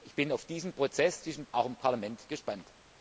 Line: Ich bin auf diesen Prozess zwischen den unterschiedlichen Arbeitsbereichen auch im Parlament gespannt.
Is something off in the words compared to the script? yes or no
yes